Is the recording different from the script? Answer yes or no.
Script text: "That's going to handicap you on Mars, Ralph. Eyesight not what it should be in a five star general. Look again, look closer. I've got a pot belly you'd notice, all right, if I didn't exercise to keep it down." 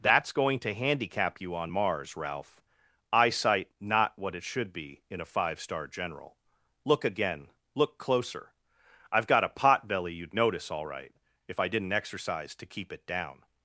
no